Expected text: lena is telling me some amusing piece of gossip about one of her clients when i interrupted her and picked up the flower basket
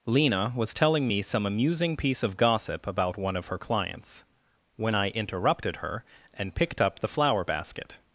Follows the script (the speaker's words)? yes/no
no